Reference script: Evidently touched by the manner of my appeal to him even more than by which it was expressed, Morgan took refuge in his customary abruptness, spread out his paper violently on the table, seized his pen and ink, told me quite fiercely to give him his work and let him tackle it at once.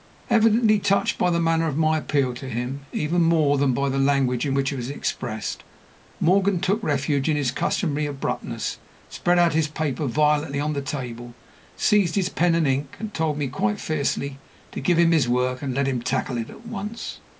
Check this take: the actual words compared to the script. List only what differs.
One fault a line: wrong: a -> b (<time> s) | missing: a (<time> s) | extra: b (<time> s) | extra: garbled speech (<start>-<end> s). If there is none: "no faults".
extra: the language in (3.9 s)
extra: and (13.0 s)